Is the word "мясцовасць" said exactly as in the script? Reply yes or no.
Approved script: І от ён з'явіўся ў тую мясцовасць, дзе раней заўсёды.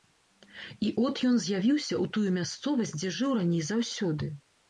yes